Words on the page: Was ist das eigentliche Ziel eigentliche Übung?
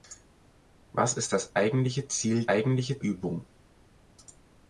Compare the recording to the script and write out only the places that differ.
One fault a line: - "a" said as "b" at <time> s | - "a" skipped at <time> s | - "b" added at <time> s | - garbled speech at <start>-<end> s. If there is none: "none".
none